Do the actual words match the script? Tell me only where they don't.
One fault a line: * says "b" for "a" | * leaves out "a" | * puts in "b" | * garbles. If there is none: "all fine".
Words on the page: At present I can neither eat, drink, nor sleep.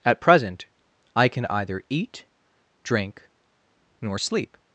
* says "either" for "neither"